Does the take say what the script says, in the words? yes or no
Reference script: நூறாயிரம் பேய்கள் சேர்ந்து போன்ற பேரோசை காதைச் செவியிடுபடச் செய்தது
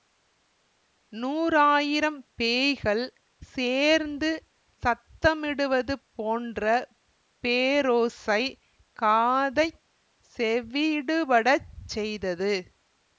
no